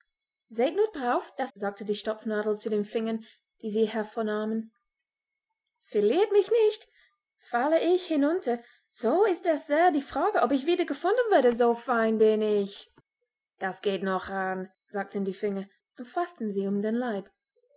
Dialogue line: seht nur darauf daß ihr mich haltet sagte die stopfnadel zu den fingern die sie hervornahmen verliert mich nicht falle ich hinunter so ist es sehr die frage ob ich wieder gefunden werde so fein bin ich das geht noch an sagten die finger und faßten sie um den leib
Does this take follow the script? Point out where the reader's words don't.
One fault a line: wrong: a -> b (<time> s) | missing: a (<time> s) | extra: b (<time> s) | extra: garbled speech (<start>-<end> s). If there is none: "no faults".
missing: ihr mich haltet (1.5 s)